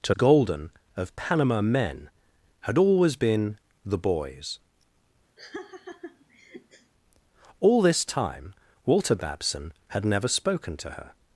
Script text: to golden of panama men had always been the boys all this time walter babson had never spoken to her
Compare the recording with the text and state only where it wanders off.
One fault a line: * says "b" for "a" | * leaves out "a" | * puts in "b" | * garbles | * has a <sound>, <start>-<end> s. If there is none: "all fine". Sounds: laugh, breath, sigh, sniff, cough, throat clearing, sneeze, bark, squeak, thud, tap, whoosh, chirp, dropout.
* has a laugh, 5.4-6.9 s